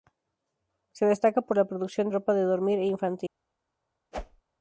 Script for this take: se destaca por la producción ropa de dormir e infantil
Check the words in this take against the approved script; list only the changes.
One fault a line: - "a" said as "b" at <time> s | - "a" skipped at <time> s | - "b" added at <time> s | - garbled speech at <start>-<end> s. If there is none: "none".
none